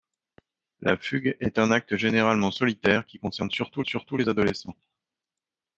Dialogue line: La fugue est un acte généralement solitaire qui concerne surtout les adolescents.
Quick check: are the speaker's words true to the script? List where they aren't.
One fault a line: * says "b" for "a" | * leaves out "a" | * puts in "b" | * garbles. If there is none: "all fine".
* puts in "surtout"